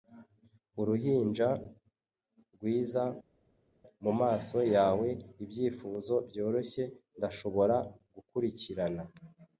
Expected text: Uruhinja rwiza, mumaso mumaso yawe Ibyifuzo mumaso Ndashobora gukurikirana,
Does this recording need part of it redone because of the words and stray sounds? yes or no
yes